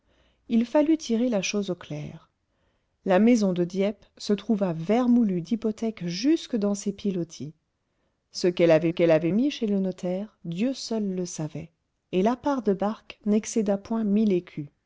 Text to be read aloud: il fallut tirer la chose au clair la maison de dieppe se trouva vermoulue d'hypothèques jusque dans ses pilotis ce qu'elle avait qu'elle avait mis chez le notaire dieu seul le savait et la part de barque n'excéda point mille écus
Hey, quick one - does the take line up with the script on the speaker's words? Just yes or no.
yes